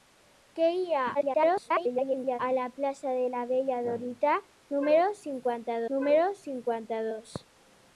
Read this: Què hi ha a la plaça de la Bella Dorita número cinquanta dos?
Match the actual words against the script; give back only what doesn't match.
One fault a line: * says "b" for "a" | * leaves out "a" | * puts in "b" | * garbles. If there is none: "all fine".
* garbles
* puts in "número cinquanta"